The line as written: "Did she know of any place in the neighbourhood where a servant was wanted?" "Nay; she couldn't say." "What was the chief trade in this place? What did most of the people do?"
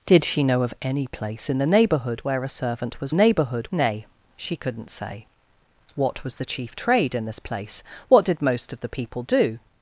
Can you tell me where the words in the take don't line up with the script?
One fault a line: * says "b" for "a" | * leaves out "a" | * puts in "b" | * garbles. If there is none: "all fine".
* says "neighbourhood" for "wanted"